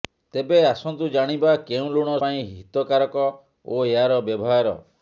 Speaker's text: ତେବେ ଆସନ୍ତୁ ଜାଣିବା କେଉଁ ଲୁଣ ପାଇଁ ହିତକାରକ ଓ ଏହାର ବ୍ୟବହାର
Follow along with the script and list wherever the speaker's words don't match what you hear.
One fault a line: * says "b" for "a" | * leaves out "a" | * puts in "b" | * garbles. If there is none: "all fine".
all fine